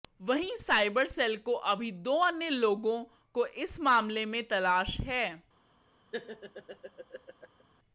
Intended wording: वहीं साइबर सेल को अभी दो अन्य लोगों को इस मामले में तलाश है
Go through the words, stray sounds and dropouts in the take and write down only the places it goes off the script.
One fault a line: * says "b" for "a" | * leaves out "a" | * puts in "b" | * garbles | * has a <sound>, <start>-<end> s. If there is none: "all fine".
* has a laugh, 6.1-7.6 s